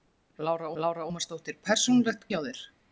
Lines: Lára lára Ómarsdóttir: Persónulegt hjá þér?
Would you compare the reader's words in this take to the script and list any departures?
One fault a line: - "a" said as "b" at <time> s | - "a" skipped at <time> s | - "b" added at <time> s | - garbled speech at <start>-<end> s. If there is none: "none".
none